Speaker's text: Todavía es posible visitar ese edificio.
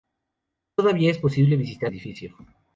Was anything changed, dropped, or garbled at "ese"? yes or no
yes